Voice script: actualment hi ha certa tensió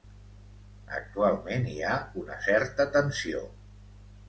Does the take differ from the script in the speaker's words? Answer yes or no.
yes